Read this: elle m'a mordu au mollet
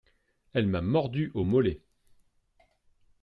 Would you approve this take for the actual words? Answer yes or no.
yes